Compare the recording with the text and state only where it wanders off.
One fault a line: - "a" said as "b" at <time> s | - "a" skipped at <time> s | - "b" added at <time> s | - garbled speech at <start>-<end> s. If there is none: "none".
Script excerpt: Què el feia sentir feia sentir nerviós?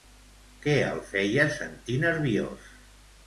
- "feia sentir" skipped at 2.0 s